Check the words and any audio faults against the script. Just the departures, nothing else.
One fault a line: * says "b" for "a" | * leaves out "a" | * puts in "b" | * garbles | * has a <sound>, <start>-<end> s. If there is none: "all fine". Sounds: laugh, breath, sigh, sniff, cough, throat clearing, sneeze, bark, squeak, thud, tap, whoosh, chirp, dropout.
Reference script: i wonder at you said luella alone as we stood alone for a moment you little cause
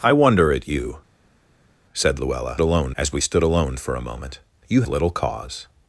all fine